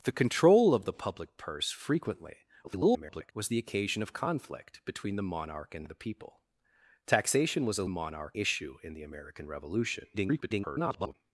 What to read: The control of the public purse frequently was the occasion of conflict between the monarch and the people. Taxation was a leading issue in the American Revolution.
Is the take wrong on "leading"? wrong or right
wrong